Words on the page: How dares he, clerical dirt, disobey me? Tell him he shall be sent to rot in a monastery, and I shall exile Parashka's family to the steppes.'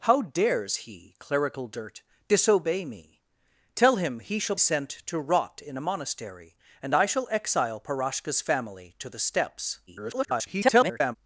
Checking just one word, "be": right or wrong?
wrong